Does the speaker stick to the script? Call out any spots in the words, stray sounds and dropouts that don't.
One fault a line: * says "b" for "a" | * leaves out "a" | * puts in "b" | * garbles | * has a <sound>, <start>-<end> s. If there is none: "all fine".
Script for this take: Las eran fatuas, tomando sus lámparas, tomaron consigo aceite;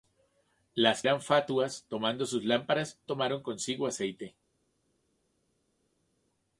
all fine